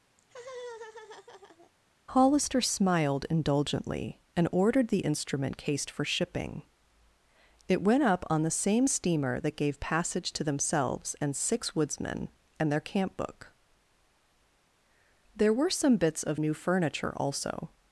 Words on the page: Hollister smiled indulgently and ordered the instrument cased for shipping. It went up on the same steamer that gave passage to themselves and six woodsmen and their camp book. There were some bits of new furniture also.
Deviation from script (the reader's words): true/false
false